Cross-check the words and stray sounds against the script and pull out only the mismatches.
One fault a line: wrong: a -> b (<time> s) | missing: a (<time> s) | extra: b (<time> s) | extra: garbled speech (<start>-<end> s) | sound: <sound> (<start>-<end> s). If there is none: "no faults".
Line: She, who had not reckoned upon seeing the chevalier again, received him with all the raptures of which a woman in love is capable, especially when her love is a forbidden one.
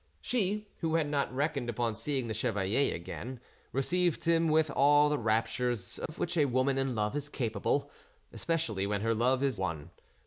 sound: dropout (6.1-6.1 s)
missing: a forbidden (9.6 s)